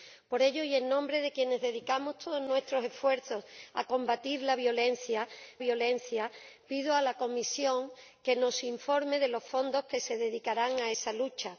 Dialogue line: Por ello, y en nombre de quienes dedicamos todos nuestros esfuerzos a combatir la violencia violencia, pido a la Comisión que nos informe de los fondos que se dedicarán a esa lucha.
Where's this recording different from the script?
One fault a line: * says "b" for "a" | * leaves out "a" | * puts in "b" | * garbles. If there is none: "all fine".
all fine